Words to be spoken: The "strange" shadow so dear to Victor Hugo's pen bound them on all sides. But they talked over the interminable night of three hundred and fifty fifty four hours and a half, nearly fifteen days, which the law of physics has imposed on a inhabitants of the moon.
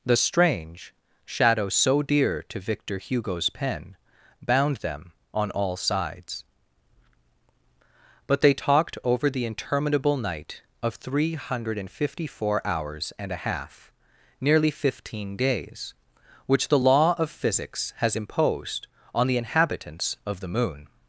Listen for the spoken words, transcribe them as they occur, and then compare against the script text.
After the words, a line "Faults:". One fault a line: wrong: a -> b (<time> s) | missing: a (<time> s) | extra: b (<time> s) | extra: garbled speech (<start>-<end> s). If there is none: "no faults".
The "strange" shadow so dear to Victor Hugo's pen bound them on all sides. But they talked over the interminable night of three hundred and fifty four hours and a half, nearly fifteen days, which the law of physics has imposed on the inhabitants of the moon.
Faults:
missing: fifty (12.2 s)
wrong: a -> the (19.3 s)